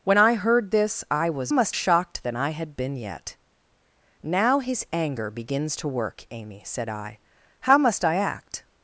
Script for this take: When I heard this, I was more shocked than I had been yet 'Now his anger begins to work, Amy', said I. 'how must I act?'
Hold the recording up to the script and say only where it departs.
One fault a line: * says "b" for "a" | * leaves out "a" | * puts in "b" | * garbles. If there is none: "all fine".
* says "must" for "more"